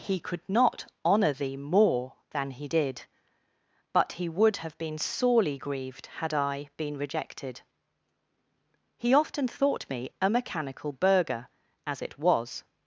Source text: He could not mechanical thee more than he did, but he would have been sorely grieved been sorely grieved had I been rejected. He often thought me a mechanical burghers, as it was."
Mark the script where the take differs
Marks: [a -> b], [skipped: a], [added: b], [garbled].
He could not [mechanical -> honour] thee more than he did, but he would have been sorely grieved [skipped: been sorely grieved] had I been rejected. He often thought me a mechanical [burghers, -> burgher] as it was."